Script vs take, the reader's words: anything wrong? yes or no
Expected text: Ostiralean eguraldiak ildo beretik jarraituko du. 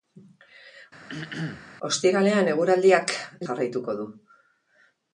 yes